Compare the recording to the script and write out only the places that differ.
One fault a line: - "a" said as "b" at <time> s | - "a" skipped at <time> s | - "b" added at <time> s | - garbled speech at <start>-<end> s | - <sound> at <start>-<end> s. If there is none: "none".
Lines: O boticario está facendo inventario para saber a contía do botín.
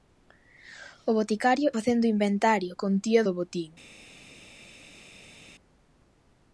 - "está" skipped at 1.7 s
- "para saber a" skipped at 2.7 s